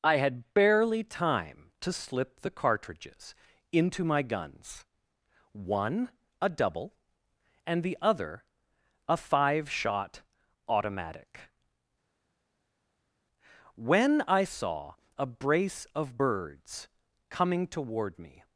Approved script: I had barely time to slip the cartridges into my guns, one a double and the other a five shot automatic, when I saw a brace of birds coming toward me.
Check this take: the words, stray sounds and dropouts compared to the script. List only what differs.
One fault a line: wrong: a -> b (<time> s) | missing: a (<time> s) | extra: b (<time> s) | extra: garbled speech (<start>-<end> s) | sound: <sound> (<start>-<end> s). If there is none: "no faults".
no faults